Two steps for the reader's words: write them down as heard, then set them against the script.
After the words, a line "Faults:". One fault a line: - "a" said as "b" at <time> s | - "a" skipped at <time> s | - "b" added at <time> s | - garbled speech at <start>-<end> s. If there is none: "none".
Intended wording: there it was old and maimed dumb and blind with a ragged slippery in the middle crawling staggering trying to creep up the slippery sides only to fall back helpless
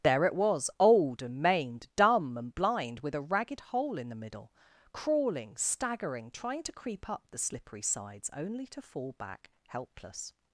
there it was old and maimed dumb and blind with a ragged hole in the middle crawling staggering trying to creep up the slippery sides only to fall back helpless
Faults:
- "slippery" said as "hole" at 3.6 s